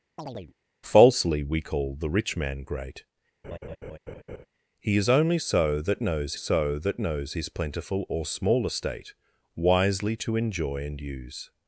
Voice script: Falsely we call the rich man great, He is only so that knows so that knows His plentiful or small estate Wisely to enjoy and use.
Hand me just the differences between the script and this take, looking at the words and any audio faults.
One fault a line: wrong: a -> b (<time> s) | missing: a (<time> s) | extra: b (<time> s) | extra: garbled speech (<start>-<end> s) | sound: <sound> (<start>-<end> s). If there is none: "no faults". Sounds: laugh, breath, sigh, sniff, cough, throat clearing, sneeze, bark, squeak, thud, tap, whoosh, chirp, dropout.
sound: chirp (0.2-0.5 s)
sound: laugh (3.4-4.5 s)